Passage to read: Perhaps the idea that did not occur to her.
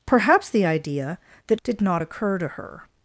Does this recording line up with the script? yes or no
yes